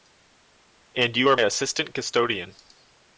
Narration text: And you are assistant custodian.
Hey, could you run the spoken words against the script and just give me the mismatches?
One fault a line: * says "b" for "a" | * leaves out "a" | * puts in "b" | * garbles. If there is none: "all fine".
all fine